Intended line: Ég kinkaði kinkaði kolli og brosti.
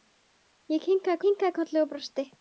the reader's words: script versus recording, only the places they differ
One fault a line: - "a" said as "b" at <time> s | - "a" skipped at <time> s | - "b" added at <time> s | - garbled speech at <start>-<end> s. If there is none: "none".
none